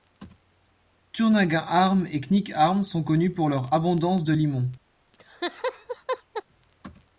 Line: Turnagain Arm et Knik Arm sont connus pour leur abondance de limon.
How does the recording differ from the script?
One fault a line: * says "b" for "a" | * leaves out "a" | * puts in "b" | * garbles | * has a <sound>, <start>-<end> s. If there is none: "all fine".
* has a laugh, 5.1-6.4 s